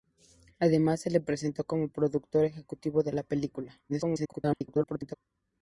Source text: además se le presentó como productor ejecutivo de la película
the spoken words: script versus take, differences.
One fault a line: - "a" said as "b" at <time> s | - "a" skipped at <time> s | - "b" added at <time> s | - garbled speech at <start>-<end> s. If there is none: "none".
- garbled speech at 3.9-5.1 s